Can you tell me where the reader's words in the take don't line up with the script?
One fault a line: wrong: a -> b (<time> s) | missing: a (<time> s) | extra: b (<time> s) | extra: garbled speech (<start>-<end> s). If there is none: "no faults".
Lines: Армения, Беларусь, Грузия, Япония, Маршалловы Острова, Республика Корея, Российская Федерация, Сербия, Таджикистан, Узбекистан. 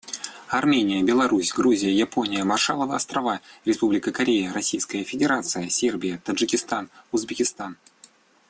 no faults